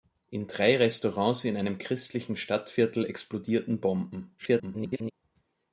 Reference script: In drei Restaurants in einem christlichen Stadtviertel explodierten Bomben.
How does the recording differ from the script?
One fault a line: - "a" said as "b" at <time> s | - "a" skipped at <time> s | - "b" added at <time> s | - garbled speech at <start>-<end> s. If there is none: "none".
- garbled speech at 4.4-5.1 s